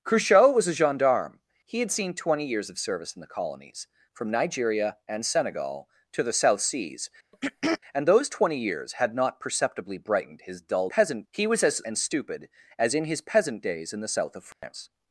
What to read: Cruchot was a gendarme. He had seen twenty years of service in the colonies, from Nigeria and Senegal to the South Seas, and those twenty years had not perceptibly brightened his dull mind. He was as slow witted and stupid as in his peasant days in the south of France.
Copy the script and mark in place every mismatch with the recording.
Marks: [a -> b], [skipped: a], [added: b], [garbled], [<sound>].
Cruchot was a gendarme. He had seen twenty years of service in the colonies, from Nigeria and Senegal to the South Seas, [throat clearing] and those twenty years had not perceptibly brightened his dull [mind. -> peasant] He was as [skipped: slow witted] and stupid as in his peasant days in the south of France. [dropout]